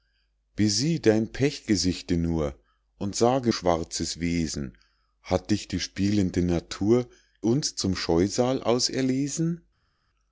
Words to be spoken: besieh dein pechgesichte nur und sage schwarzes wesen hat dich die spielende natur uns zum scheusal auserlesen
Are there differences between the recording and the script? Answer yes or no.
no